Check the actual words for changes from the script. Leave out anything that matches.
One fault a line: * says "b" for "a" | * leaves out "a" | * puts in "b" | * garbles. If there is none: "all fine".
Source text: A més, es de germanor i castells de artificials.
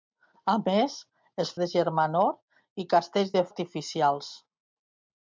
all fine